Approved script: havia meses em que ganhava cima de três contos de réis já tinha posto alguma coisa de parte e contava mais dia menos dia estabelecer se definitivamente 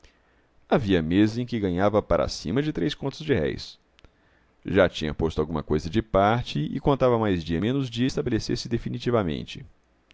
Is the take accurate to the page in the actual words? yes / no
no